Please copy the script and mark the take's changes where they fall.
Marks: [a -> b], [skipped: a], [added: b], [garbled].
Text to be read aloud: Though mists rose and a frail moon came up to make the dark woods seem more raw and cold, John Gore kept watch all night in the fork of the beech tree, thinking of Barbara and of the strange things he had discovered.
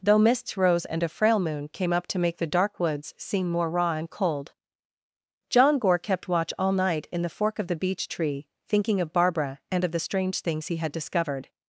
Though mists rose and a frail moon came up to make the dark woods seem more raw and cold, John Gore kept watch all night in the fork of the beech tree, thinking of Barbara and of the strange things he had discovered.